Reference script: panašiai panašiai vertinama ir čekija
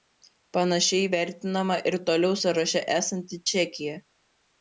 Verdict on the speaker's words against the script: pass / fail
fail